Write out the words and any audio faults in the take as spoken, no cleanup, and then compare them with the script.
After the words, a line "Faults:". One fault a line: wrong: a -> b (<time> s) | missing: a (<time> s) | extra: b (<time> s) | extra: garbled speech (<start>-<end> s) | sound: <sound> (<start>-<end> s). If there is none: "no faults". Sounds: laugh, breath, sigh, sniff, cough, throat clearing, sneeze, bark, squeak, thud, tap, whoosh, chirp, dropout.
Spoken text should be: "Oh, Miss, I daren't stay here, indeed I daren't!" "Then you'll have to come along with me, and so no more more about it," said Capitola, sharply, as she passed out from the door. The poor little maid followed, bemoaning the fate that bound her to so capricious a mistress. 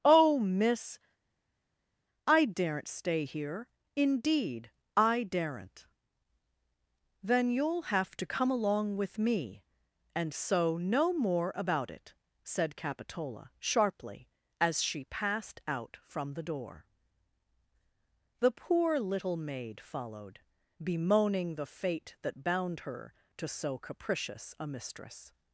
"Oh, Miss, I daren't stay here, indeed I daren't!" "Then you'll have to come along with me, and so no more about it," said Capitola, sharply, as she passed out from the door. The poor little maid followed, bemoaning the fate that bound her to so capricious a mistress.
Faults:
missing: more (11.5 s)